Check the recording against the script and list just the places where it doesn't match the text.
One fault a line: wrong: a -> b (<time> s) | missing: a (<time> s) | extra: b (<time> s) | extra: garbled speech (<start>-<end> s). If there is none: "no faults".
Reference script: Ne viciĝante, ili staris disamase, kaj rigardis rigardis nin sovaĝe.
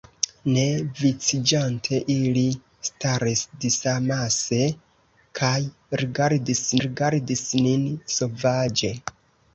no faults